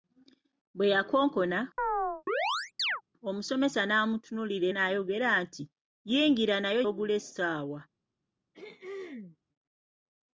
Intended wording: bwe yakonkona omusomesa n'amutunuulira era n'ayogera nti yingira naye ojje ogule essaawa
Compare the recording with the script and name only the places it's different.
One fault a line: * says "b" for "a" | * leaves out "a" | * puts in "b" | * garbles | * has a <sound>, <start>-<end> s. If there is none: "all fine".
* has a chirp, 1.8-3.0 s
* leaves out "era"
* leaves out "ojje"
* has a throat clearing, 8.5-9.4 s